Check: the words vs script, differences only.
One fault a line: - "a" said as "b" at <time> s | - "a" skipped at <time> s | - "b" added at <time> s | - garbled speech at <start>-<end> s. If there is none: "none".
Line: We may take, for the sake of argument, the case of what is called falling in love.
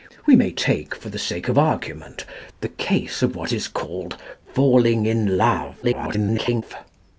- garbled speech at 5.8-6.6 s